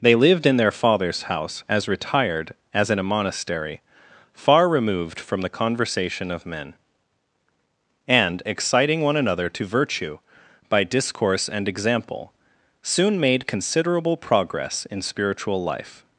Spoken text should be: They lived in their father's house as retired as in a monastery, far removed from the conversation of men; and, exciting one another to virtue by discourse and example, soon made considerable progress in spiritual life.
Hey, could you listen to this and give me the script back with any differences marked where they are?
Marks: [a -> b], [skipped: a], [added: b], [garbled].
They lived in their father's house as retired as in a monastery, far removed from the conversation of men; and, exciting one another to virtue by discourse and example, soon made considerable progress in spiritual life.